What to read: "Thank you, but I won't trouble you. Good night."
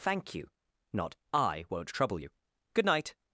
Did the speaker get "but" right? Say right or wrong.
wrong